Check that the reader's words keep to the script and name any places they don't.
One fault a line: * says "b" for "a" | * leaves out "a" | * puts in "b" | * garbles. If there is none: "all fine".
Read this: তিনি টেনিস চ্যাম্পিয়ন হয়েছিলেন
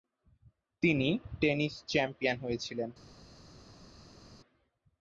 all fine